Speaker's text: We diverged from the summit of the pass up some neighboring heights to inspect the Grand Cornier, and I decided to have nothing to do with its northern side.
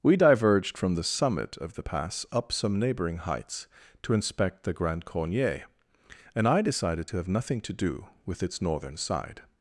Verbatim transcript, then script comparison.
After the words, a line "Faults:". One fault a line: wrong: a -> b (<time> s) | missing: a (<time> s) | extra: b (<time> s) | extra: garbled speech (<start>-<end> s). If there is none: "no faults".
We diverged from the summit of the pass up some neighboring heights to inspect the Grand Cornier, and I decided to have nothing to do with its northern side.
Faults:
no faults